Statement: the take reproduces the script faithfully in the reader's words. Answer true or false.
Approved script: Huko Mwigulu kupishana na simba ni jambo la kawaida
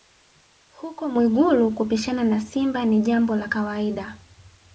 true